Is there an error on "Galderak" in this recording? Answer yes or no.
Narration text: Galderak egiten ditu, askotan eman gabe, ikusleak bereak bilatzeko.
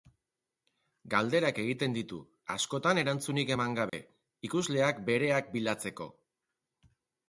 no